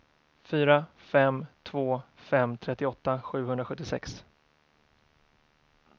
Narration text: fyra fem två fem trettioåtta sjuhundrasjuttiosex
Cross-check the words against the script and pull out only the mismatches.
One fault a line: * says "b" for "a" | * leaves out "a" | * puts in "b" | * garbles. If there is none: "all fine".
all fine